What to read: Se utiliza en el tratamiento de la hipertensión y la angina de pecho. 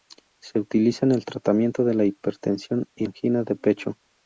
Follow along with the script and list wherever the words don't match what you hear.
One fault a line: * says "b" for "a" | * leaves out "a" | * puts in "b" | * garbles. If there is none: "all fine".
* leaves out "la"